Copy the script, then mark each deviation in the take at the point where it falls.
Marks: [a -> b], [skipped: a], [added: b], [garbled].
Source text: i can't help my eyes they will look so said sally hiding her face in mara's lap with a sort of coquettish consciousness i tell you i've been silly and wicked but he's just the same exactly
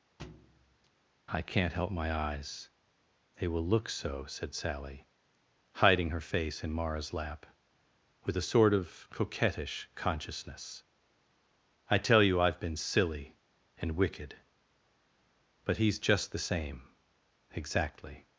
i can't help my eyes they will look so said sally hiding her face in mara's lap with a sort of coquettish consciousness i tell you i've been silly and wicked but he's just the same exactly